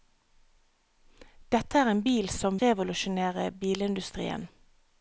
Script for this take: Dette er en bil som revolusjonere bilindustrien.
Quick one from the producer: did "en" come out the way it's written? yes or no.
yes